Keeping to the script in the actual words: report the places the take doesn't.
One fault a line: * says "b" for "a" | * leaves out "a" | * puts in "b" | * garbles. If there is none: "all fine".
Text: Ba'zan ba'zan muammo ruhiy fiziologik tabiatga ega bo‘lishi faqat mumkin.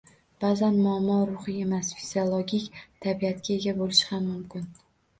* leaves out "ba'zan"
* puts in "emas"
* says "ham" for "faqat"